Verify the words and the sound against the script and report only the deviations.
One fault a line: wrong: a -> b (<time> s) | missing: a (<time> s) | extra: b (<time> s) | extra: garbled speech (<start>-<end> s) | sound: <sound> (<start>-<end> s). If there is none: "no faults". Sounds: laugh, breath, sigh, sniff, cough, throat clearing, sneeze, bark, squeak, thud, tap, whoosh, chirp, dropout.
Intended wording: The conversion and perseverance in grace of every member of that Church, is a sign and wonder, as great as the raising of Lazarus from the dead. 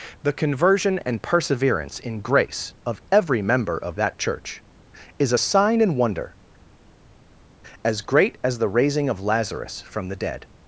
no faults